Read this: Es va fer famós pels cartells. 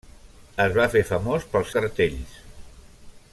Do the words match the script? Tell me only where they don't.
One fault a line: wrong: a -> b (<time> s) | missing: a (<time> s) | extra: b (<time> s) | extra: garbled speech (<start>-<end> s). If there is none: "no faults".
no faults